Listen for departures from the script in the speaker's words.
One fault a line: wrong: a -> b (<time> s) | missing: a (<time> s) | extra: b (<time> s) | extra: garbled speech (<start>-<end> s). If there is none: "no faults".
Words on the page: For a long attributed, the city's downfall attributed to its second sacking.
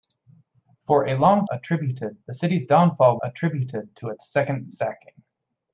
no faults